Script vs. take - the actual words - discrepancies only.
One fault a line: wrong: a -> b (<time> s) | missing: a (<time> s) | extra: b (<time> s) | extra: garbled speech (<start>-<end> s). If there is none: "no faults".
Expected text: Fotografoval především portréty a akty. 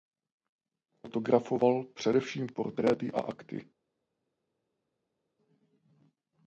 no faults